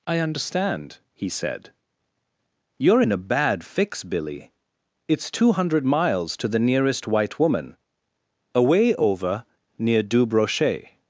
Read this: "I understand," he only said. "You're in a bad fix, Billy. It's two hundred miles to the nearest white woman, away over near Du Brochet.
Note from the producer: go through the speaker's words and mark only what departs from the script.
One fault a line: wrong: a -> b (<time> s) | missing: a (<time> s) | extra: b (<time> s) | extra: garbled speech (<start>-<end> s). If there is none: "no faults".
missing: only (1.3 s)